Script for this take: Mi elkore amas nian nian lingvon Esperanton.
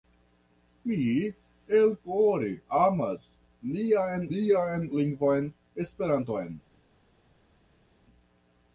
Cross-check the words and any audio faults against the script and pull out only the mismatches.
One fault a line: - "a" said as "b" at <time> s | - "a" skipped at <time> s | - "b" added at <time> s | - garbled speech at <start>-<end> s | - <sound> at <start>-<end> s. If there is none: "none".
none